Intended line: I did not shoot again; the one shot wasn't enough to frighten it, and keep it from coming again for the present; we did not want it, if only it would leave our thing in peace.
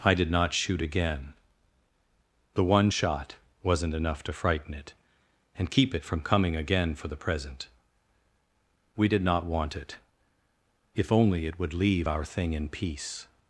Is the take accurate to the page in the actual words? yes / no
yes